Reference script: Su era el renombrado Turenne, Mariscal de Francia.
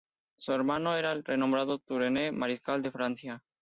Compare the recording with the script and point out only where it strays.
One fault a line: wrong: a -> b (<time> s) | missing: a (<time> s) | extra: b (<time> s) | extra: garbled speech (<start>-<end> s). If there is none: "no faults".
extra: hermano (0.5 s)